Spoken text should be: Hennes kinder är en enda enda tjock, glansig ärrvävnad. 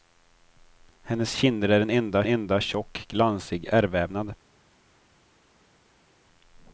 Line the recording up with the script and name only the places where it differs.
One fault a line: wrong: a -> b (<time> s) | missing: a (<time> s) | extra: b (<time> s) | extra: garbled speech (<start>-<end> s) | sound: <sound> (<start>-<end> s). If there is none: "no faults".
no faults